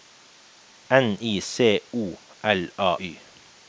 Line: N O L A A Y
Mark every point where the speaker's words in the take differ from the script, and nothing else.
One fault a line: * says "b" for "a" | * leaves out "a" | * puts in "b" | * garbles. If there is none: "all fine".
* puts in "I C"
* leaves out "A"